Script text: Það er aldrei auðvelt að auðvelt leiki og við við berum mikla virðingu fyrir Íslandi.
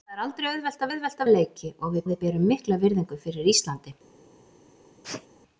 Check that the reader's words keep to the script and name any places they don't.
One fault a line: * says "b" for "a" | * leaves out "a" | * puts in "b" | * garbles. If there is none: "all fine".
all fine